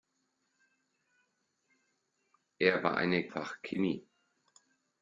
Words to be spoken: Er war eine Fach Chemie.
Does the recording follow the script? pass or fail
pass